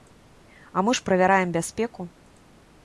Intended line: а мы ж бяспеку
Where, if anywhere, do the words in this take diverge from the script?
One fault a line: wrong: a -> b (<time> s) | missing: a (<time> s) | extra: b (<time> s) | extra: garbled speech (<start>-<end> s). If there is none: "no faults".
extra: правяраем (1.0 s)